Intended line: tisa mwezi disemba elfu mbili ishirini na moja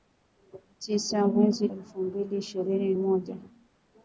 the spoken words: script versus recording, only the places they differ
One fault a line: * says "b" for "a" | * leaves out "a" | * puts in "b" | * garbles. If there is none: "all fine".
* leaves out "disemba"
* leaves out "na"